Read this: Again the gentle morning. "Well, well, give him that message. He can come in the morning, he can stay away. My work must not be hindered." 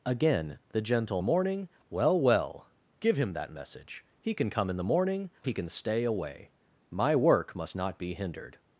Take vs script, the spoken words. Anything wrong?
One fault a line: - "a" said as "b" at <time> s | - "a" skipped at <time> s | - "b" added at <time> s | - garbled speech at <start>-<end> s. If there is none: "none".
none